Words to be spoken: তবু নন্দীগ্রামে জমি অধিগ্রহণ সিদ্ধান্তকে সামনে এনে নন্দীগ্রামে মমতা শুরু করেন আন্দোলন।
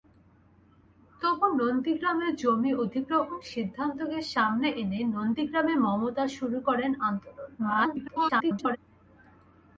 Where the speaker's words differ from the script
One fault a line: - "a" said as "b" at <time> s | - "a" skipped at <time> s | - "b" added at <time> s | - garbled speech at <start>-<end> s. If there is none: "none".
- garbled speech at 7.6-8.8 s